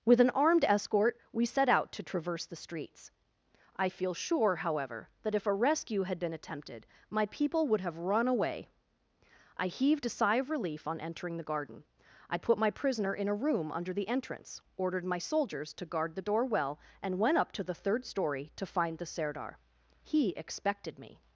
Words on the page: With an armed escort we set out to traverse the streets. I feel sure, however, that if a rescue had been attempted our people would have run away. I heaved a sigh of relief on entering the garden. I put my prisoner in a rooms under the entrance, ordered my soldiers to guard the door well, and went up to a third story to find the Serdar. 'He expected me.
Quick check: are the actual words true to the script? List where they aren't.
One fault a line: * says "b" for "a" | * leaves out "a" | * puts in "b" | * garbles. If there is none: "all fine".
* says "my" for "our"
* says "room" for "rooms"
* says "the" for "a"